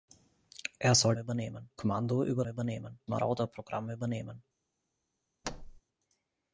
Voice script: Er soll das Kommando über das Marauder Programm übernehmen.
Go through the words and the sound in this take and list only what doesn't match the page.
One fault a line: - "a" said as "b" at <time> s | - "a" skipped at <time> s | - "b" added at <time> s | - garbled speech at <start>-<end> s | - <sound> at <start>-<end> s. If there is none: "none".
- "das" said as "übernehmen" at 1.2 s
- "das" said as "übernehmen" at 2.5 s
- thud at 5.4-5.8 s